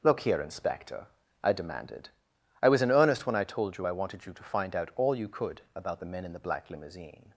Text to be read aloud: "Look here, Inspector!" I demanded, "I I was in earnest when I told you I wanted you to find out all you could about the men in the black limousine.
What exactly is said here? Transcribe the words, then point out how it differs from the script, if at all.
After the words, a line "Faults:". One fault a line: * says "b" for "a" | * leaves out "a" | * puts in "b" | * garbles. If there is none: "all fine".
"Look here, Inspector!" I demanded, "I was in earnest when I told you I wanted you to find out all you could about the men in the black limousine.
Faults:
* leaves out "I"